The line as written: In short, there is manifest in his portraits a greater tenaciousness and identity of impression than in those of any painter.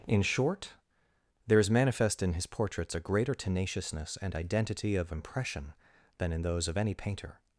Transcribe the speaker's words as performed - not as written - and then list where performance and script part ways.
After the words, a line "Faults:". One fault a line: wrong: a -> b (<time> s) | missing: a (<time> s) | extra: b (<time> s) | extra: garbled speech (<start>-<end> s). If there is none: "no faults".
In short, there is manifest in his portraits a greater tenaciousness and identity of impression than in those of any painter.
Faults:
no faults